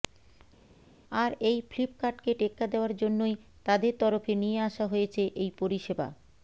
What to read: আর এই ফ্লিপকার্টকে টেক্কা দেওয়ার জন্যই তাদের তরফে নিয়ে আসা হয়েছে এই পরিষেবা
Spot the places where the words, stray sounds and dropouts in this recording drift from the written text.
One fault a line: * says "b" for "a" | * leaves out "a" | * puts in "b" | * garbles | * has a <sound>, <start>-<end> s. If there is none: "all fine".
all fine